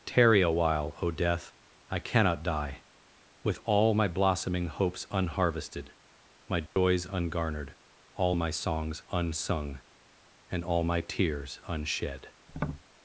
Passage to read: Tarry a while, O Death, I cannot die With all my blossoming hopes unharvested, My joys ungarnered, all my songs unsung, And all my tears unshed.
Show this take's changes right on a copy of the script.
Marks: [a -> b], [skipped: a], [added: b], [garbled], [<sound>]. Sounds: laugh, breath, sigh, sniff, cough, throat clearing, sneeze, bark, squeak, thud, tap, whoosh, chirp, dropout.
Tarry a while, O Death, I cannot die With all my blossoming hopes unharvested, My joys [dropout] ungarnered, all my songs unsung, And all my tears unshed. [tap]